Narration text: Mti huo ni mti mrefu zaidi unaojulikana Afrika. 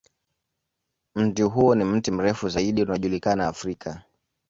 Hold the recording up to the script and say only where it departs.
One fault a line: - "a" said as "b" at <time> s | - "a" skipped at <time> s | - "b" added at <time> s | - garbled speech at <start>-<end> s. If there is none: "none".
none